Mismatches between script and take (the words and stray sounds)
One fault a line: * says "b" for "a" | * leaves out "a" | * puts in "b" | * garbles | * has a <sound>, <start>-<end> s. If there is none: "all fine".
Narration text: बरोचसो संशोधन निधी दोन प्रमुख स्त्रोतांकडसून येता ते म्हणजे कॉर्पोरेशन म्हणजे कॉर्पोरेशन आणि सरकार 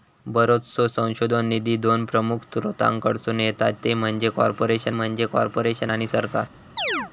* has a chirp, 6.8-7.1 s